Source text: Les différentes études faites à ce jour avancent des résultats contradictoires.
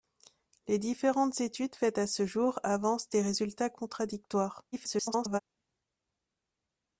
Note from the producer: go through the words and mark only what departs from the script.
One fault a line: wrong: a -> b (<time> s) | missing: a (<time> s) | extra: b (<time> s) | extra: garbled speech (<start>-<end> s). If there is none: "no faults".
extra: garbled speech (4.7-5.4 s)